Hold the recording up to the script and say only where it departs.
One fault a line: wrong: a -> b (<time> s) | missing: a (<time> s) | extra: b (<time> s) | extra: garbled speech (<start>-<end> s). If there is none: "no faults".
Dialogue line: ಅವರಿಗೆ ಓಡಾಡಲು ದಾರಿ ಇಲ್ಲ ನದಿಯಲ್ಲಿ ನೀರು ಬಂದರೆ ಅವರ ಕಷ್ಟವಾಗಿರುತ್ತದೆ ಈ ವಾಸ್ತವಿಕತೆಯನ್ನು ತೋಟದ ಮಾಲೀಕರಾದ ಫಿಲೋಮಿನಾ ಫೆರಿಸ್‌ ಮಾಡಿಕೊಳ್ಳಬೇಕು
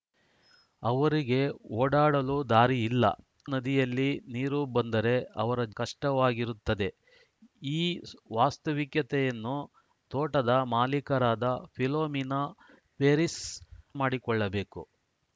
no faults